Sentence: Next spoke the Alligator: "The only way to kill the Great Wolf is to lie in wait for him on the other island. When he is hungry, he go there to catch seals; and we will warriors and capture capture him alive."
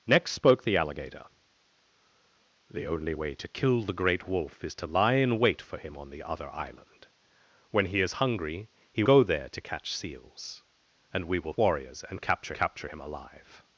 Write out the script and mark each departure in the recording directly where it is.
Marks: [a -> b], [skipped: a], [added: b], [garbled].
Next spoke the Alligator: "The only way to kill the Great Wolf is to lie in wait for him on the other island. When he is hungry, he go there to catch seals; and we will warriors and capture capture him alive."